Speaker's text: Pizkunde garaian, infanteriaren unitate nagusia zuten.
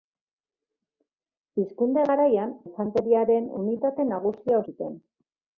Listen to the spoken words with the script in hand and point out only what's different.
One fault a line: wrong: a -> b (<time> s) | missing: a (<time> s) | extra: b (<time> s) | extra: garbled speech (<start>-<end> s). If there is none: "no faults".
no faults